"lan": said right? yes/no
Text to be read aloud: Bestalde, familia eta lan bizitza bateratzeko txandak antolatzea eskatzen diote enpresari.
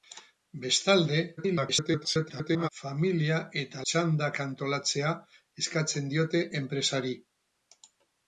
no